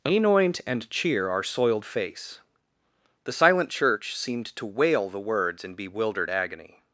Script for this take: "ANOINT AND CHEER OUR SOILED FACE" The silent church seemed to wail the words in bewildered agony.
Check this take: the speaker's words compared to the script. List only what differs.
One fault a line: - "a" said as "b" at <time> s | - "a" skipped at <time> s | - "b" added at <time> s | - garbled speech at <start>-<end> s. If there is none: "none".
none